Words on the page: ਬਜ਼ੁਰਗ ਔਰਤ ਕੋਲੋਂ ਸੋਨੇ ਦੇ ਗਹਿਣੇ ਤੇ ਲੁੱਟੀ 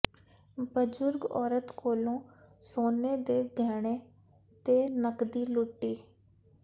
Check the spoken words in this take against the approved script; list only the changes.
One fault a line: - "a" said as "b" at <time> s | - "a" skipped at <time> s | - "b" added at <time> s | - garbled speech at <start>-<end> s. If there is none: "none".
- "ਨਕਦੀ" added at 4.9 s